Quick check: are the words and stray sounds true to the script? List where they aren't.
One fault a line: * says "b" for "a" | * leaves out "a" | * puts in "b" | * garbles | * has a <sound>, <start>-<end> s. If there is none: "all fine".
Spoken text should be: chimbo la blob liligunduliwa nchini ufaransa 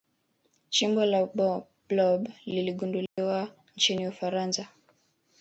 * has a dropout, 3.1-3.2 s